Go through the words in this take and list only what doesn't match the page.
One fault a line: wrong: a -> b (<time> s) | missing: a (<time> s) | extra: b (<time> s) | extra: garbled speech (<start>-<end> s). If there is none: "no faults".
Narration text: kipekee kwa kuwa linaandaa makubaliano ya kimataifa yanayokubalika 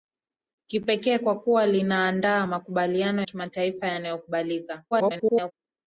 missing: ya (3.2 s)
extra: garbled speech (4.9-5.5 s)